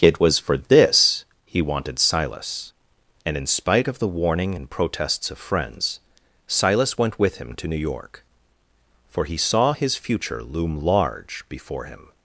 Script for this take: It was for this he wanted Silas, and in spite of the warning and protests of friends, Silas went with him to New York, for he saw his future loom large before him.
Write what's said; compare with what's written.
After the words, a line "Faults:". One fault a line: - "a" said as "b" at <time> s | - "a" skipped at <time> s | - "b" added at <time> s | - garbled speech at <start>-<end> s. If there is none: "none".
It was for this he wanted Silas, and in spite of the warning and protests of friends, Silas went with him to New York, for he saw his future loom large before him.
Faults:
none